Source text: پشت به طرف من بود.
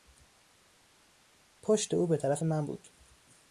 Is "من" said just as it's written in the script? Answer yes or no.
yes